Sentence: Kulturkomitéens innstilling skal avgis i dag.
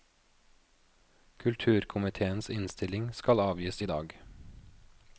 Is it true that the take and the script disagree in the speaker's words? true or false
false